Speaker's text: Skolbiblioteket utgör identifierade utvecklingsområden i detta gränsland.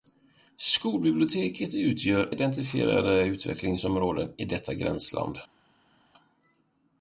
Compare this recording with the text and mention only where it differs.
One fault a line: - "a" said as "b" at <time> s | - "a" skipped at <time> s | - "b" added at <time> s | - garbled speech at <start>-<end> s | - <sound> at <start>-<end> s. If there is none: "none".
none